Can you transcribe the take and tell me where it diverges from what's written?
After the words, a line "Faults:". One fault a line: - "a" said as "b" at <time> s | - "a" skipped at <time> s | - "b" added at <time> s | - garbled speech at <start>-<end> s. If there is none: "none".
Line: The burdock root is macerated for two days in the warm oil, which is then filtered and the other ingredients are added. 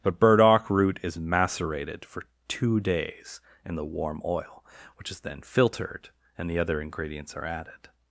But burdock root is macerated for two days in the warm oil, which is then filtered and the other ingredients are added.
Faults:
- "The" said as "But" at 0.0 s